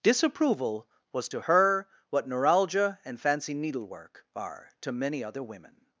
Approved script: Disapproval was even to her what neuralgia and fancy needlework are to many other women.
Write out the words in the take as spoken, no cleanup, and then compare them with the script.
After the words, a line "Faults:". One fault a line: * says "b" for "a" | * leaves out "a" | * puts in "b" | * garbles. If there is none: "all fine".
Disapproval was to her what neuralgia and fancy needlework are to many other women.
Faults:
* leaves out "even"